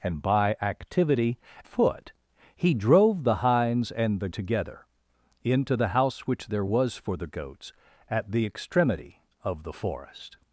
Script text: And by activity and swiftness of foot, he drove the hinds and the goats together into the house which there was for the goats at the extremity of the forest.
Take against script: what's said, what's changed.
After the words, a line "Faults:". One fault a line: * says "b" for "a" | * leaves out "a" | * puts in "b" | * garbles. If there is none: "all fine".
And by activity foot, he drove the hinds and the together into the house which there was for the goats at the extremity of the forest.
Faults:
* leaves out "and swiftness of"
* leaves out "goats"